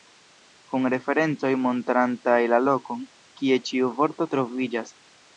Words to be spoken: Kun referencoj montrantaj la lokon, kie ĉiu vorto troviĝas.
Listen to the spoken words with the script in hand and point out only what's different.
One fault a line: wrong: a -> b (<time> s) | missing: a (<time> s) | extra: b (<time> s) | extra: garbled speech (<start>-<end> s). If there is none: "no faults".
no faults